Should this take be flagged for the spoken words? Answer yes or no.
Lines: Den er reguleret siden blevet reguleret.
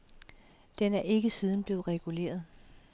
yes